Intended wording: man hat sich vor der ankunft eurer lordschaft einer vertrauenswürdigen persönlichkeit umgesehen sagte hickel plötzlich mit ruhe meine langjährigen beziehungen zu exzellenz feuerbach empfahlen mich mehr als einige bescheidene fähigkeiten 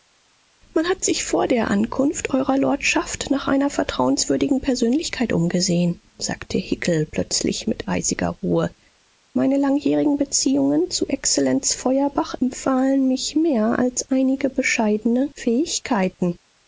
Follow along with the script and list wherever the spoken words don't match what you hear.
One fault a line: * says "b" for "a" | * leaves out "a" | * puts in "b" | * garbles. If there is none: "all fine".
* puts in "nach"
* puts in "eisiger"